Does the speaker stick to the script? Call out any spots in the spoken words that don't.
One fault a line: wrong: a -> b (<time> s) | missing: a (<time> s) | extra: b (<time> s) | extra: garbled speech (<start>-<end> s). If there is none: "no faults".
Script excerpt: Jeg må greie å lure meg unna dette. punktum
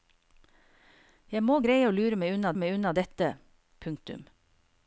extra: meg unna (2.6 s)